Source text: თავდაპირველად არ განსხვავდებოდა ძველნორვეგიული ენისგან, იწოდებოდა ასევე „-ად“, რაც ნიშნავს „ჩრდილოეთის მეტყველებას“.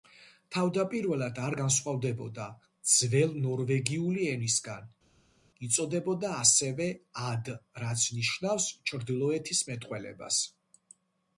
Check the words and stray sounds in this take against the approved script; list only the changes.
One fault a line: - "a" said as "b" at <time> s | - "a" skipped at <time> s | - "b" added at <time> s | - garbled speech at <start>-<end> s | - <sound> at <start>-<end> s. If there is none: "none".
none